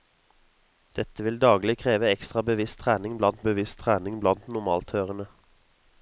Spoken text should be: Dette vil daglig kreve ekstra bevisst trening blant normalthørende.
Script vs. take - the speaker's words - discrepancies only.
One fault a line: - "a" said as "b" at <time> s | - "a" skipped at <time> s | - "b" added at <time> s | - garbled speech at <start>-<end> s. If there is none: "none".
- "bevisst trening blant" added at 3.4 s